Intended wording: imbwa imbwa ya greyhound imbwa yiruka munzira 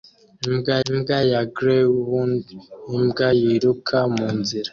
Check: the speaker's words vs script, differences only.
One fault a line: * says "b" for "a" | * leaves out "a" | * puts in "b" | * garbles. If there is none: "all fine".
all fine